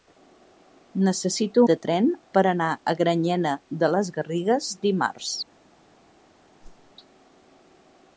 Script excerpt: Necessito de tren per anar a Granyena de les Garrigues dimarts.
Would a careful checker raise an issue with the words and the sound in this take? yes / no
yes